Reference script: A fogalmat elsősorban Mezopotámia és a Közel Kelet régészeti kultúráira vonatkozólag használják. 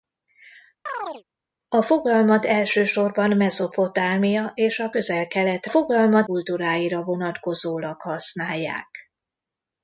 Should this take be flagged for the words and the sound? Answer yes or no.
yes